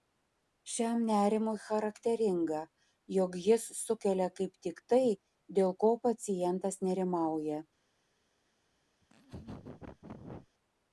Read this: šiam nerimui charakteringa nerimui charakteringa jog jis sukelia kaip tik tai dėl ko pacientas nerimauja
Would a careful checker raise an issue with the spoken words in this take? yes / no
yes